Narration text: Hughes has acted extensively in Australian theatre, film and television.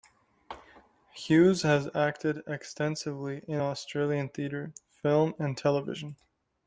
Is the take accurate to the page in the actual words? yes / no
yes